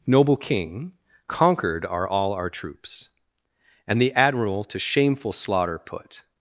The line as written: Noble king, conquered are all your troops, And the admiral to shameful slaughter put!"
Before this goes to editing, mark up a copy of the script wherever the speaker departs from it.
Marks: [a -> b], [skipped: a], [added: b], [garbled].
Noble king, conquered are all [your -> our] troops, And the admiral to shameful slaughter put!"